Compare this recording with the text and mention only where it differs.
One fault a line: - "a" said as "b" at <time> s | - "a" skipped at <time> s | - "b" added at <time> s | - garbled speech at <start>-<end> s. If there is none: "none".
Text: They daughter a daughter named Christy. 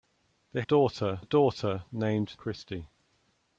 none